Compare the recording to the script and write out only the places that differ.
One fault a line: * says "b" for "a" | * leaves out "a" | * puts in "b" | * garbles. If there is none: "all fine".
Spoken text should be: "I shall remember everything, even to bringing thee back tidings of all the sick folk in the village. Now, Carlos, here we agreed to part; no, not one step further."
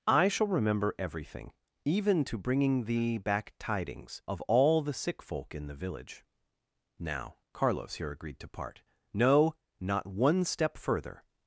* leaves out "we"